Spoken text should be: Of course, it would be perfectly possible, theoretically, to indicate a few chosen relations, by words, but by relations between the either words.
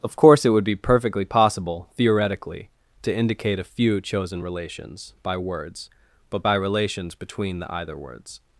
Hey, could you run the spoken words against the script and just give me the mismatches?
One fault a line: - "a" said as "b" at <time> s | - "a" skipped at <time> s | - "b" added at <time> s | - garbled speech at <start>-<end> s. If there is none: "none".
none